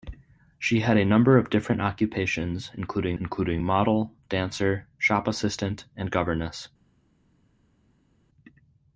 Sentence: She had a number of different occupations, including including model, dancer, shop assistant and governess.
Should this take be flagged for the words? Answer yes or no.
no